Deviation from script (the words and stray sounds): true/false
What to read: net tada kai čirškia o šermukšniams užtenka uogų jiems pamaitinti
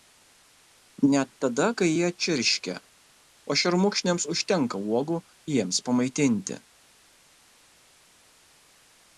true